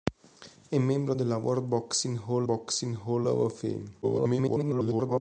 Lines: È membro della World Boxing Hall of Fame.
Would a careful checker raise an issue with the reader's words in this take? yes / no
yes